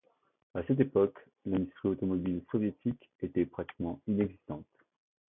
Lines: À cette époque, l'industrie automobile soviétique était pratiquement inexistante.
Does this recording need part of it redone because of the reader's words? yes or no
no